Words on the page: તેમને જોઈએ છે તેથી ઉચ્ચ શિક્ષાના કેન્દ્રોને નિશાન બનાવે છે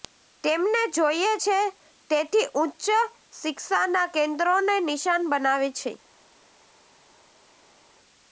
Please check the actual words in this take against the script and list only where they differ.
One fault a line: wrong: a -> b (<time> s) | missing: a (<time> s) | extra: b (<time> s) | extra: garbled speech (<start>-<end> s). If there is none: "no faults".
no faults